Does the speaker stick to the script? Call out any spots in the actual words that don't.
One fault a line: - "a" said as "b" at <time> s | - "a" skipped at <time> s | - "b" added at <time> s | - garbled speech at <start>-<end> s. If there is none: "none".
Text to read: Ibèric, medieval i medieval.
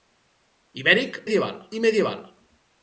none